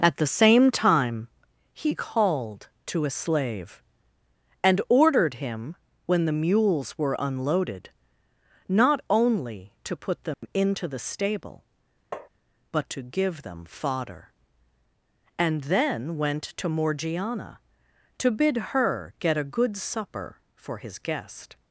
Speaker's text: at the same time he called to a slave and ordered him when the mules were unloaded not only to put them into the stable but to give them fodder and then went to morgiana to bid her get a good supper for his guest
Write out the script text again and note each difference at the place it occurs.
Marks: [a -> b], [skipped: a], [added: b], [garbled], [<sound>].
at the same time he called to a slave and ordered him when the mules were unloaded not only to put them [dropout] into the stable [tap] but to give them fodder and then went to morgiana to bid her get a good supper for his guest